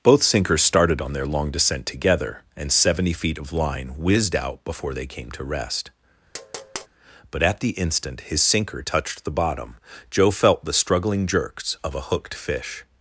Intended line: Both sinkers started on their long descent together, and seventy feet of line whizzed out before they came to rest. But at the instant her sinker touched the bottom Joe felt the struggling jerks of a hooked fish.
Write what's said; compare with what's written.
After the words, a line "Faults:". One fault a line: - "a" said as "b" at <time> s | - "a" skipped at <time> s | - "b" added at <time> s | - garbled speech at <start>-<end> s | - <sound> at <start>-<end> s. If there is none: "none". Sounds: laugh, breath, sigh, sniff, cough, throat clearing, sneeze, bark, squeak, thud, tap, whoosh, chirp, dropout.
Both sinkers started on their long descent together, and seventy feet of line whizzed out before they came to rest. But at the instant his sinker touched the bottom Joe felt the struggling jerks of a hooked fish.
Faults:
- tap at 6.3-6.9 s
- "her" said as "his" at 8.2 s